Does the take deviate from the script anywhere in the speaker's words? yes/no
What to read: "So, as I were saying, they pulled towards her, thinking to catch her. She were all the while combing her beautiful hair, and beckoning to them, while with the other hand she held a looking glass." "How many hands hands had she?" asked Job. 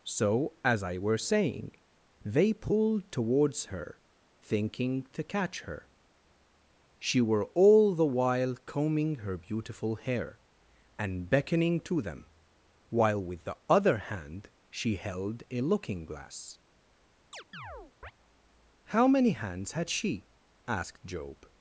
yes